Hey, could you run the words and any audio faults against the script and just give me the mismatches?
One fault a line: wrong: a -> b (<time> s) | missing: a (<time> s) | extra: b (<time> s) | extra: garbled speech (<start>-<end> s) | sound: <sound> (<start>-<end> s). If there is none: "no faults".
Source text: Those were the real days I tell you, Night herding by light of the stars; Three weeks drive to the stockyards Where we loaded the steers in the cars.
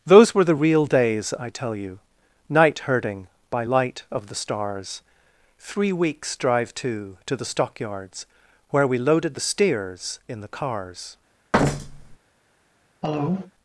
extra: to (7.2 s)
sound: thud (11.5-12.2 s)
sound: cough (13.0-13.5 s)